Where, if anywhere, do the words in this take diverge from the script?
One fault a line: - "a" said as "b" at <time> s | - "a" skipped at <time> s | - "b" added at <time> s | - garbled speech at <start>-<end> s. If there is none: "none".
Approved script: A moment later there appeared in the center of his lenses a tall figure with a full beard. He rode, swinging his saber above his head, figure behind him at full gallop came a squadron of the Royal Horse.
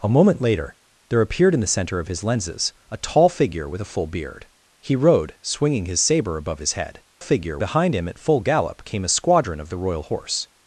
none